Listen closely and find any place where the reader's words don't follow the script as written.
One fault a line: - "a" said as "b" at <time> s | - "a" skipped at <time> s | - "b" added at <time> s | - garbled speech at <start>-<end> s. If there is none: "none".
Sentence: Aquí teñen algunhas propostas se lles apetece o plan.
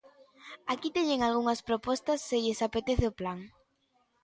none